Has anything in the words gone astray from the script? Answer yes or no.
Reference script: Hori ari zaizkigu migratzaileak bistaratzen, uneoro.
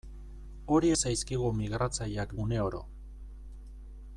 yes